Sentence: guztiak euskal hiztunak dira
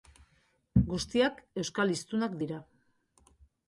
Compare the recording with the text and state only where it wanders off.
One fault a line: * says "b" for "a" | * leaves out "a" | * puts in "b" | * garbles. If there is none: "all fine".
all fine